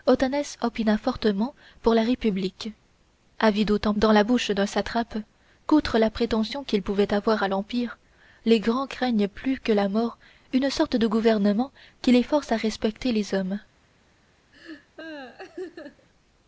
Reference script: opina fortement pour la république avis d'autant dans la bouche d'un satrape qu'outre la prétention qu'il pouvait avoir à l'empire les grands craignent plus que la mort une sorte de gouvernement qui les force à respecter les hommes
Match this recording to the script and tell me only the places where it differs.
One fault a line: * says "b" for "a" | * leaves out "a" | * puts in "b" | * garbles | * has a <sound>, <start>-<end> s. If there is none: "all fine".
* has a laugh, 14.5-16.1 s